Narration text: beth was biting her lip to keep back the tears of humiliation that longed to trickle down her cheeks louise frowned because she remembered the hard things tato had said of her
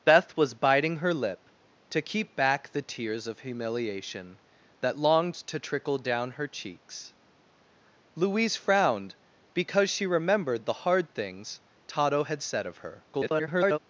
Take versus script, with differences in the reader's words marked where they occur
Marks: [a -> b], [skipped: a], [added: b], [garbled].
beth was biting her lip to keep back the tears of humiliation that longed to trickle down her cheeks louise frowned because she remembered the hard things tato had said of her [garbled]